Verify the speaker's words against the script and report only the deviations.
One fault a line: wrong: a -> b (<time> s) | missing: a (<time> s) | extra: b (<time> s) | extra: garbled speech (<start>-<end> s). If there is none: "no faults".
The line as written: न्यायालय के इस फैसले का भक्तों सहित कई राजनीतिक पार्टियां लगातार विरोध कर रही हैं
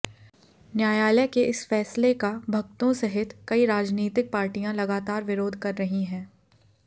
no faults